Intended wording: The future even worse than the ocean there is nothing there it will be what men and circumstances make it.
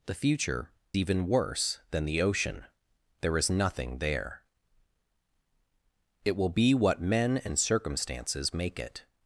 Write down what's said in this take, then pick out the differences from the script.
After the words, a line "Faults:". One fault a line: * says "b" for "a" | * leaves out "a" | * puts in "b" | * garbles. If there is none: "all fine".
The future even worse than the ocean there is nothing there it will be what men and circumstances make it.
Faults:
all fine